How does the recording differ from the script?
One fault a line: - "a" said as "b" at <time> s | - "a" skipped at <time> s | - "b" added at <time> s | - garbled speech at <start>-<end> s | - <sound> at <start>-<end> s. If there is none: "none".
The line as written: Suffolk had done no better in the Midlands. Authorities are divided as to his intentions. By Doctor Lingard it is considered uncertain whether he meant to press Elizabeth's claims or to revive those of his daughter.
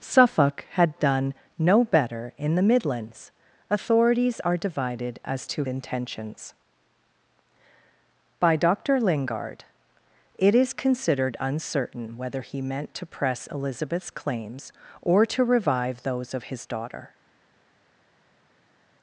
- "his" skipped at 5.6 s